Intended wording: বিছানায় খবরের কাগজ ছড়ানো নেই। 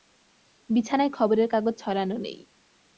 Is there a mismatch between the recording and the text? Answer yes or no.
no